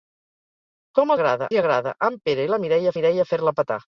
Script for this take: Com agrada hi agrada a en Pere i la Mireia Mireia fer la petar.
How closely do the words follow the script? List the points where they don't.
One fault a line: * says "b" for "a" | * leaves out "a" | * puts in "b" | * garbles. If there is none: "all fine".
all fine